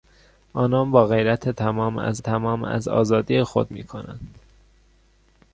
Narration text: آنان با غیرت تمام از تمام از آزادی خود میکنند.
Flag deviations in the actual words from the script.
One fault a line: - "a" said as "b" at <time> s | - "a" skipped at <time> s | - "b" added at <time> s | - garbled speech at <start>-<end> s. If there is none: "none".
none